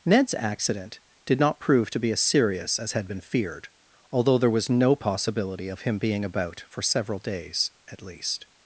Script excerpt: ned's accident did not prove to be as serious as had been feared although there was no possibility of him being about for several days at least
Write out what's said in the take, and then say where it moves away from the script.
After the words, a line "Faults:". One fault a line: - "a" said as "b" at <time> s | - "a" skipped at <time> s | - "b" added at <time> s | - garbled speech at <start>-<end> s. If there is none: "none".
ned's accident did not prove to be as serious as had been feared although there was no possibility of him being about for several days at least
Faults:
none